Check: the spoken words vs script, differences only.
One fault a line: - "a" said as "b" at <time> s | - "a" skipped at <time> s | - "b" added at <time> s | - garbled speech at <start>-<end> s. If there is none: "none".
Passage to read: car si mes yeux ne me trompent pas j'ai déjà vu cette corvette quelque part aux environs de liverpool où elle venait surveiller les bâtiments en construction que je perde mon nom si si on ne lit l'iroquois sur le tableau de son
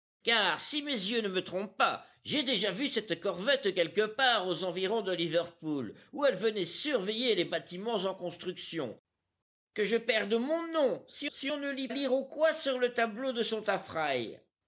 none